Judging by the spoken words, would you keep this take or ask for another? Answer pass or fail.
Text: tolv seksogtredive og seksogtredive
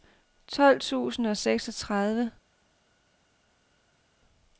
fail